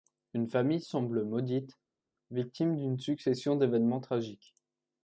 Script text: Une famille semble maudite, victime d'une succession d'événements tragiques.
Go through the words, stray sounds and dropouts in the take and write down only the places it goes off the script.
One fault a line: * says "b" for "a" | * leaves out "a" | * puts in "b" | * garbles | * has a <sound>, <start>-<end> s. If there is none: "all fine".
all fine